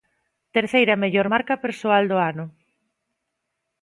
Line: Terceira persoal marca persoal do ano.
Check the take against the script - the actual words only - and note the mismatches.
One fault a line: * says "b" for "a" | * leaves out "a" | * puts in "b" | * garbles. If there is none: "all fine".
* says "mellor" for "persoal"